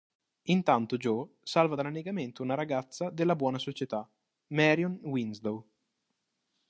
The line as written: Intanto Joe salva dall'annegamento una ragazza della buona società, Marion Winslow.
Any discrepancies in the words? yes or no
no